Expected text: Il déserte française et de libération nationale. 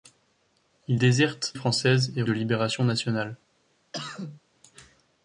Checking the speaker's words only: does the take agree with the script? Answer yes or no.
yes